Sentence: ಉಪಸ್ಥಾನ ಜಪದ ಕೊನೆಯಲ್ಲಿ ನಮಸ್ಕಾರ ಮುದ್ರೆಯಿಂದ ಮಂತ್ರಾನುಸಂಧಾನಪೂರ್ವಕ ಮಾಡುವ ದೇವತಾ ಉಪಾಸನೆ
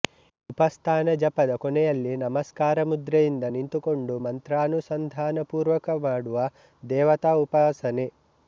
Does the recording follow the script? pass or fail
fail